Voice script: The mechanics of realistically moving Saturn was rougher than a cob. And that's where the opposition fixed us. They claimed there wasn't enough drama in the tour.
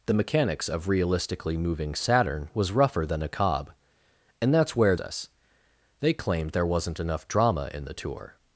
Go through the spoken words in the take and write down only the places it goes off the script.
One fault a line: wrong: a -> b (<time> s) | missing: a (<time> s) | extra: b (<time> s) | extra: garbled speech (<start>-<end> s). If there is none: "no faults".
missing: the opposition fixed (5.0 s)